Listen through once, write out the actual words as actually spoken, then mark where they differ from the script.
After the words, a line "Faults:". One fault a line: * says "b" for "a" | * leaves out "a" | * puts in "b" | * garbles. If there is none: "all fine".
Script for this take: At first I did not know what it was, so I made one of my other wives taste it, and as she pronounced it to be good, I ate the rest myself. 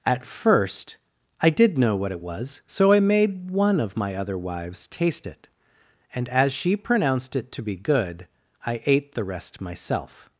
At first I did know what it was, so I made one of my other wives taste it, and as she pronounced it to be good, I ate the rest myself.
Faults:
* leaves out "not"